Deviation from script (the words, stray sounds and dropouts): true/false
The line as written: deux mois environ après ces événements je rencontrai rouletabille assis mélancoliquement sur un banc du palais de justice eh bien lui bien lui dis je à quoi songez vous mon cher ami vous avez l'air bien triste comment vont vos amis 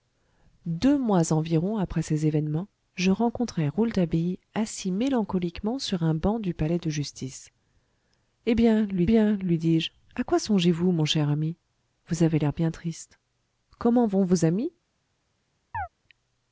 true